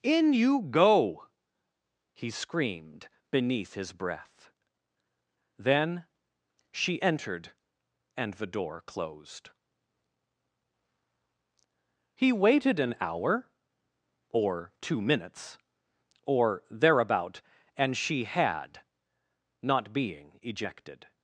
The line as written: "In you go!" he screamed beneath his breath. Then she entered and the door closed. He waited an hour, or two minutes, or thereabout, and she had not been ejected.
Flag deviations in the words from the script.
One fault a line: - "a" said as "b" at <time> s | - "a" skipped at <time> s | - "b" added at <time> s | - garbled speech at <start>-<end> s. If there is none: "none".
- "been" said as "being" at 19.9 s